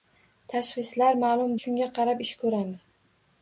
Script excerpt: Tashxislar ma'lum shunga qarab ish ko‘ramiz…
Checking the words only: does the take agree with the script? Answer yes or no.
yes